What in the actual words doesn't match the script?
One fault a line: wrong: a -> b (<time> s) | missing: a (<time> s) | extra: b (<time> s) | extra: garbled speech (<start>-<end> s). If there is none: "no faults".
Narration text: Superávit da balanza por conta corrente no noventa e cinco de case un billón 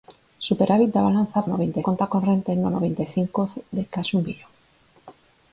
wrong: por -> noventa (1.5 s)